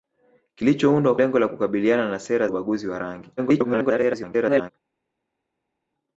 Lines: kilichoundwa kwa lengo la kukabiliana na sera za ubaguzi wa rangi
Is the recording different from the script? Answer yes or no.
yes